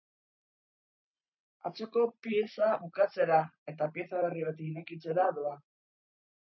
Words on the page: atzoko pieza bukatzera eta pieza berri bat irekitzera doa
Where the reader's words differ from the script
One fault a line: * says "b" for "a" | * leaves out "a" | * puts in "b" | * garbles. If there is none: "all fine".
all fine